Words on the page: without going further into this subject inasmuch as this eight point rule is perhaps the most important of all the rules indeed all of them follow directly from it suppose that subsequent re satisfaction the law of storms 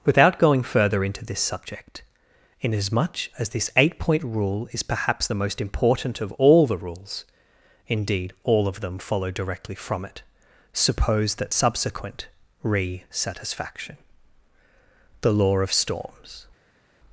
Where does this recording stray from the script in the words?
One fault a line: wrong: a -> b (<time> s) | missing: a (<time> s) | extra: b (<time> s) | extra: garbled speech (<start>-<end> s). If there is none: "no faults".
no faults